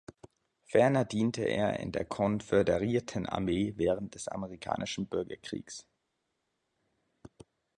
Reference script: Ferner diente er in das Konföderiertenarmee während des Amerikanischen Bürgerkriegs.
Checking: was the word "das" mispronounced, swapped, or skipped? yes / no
yes